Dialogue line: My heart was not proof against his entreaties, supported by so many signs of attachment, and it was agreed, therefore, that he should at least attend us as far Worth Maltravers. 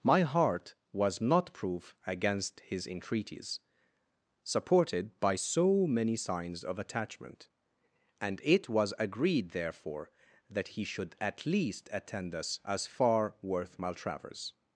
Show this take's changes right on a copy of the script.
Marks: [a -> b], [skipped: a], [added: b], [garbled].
My heart was not proof against his entreaties, supported by so many signs of attachment, and it was agreed, therefore, that he should at least attend us as far Worth Maltravers.